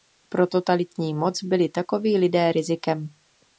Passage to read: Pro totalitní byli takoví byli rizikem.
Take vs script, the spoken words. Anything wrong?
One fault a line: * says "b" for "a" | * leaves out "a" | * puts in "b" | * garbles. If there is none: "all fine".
* puts in "moc"
* says "lidé" for "byli"